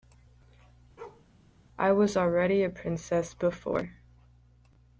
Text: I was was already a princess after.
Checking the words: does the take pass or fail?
fail